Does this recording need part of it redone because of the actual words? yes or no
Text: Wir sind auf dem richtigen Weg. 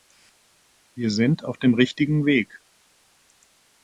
no